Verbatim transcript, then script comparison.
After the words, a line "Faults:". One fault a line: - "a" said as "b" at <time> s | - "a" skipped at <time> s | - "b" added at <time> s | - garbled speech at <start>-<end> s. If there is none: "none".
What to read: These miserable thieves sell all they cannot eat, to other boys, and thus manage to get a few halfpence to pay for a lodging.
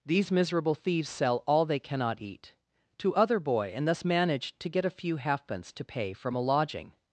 These miserable thieves sell all they cannot eat, to other boy, and thus manage to get a few halfpence to pay from a lodging.
Faults:
- "boys" said as "boy" at 3.4 s
- "for" said as "from" at 6.1 s